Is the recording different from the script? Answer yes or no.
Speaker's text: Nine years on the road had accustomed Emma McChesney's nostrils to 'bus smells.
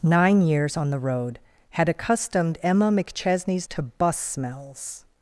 yes